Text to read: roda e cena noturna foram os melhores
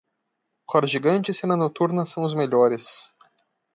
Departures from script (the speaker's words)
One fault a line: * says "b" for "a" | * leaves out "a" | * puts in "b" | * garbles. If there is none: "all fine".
* puts in "gigante"
* says "são" for "foram"